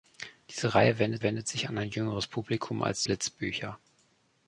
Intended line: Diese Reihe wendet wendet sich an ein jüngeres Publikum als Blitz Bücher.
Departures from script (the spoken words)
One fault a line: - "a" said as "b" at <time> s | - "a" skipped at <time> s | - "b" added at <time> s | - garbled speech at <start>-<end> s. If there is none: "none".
none